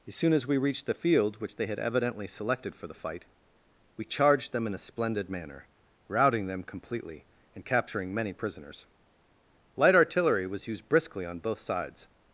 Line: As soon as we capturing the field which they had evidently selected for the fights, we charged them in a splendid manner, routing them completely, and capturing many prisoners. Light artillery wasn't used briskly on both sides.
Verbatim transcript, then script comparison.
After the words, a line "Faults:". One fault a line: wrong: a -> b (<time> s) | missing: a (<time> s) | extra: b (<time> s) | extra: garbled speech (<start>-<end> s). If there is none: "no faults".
As soon as we reached the field which they had evidently selected for the fight, we charged them in a splendid manner, routing them completely, and capturing many prisoners. Light artillery was used briskly on both sides.
Faults:
wrong: capturing -> reached (0.6 s)
wrong: fights -> fight (2.9 s)
wrong: wasn't -> was (10.5 s)